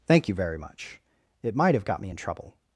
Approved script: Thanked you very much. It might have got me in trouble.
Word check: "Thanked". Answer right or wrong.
wrong